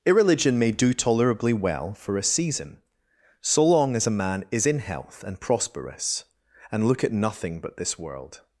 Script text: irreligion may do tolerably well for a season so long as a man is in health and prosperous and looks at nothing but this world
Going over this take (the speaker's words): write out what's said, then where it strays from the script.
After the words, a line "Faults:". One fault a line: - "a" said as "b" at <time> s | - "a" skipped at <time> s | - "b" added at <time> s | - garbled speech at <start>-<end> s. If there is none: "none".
irreligion may do tolerably well for a season so long as a man is in health and prosperous and look at nothing but this world
Faults:
- "looks" said as "look" at 6.9 s